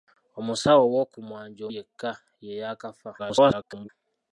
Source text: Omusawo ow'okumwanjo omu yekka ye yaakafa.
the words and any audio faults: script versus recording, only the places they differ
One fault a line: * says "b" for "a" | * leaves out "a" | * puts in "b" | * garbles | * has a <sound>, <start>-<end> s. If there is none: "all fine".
* leaves out "omu"
* garbles